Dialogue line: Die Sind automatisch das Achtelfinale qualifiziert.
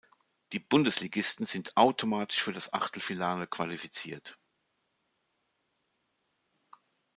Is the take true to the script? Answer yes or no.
no